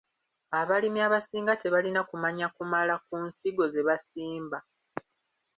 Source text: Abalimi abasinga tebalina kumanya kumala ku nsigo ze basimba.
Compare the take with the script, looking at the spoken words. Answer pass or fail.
pass